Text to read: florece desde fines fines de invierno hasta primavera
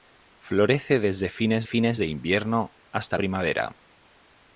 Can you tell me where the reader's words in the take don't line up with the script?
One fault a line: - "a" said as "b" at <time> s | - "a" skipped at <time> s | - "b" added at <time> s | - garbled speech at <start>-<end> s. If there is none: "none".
none